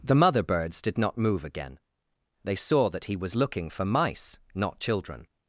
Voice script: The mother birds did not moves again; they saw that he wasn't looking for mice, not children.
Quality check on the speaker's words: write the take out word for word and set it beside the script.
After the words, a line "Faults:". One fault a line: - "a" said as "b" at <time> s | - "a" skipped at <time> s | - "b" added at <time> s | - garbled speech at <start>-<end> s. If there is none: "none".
The mother birds did not move again; they saw that he was looking for mice, not children.
Faults:
- "moves" said as "move" at 1.2 s
- "wasn't" said as "was" at 3.1 s